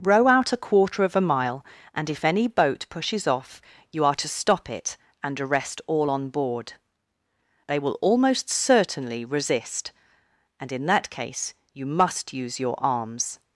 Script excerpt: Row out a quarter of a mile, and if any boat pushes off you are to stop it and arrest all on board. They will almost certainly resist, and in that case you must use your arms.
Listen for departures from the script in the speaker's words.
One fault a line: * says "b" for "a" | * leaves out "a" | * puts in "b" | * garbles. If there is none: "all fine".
all fine